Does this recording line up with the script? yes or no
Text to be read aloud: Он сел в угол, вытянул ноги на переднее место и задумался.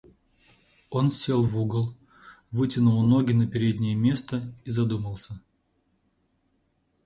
yes